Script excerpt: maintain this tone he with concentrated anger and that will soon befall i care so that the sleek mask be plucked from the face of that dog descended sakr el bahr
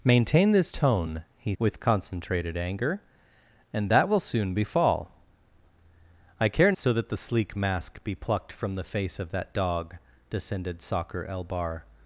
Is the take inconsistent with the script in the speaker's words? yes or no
no